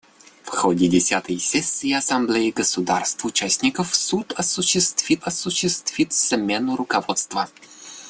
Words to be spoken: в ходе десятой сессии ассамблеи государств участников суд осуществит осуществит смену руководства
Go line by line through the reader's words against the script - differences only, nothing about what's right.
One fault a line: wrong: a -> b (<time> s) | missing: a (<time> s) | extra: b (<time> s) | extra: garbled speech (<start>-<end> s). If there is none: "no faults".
no faults